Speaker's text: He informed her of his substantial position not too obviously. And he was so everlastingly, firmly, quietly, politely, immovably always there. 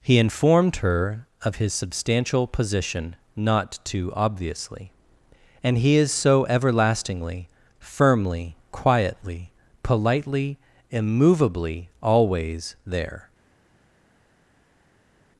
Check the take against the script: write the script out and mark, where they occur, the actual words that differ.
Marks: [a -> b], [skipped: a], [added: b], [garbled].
He informed her of his substantial position not too obviously. And he [was -> is] so everlastingly, firmly, quietly, politely, immovably always there.